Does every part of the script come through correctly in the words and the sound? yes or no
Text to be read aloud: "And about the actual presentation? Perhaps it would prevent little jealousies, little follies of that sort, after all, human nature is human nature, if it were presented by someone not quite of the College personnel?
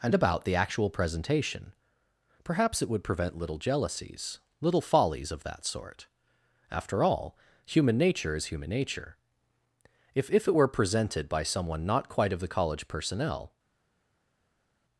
no